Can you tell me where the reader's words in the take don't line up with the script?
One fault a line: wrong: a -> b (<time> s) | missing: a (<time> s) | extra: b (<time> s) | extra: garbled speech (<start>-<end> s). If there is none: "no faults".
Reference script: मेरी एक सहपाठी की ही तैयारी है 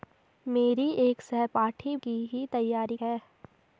no faults